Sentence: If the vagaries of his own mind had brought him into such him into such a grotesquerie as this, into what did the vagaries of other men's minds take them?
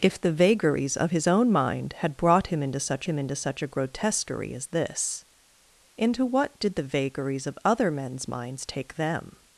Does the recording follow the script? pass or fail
pass